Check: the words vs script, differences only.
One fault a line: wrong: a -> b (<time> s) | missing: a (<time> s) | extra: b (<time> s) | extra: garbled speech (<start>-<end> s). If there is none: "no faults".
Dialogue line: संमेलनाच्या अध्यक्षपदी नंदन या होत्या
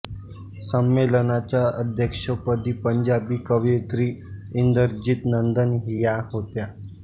extra: पंजाबी कवयित्री इंदरजीत (2.8 s)